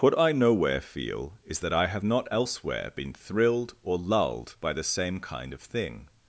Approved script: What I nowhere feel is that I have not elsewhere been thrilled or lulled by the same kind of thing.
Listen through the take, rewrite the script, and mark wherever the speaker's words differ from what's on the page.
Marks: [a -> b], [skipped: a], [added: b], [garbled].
What I nowhere feel is that I have not elsewhere been thrilled or lulled by the same kind of thing.